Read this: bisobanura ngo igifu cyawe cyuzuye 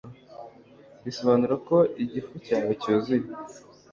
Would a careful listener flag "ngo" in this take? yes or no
yes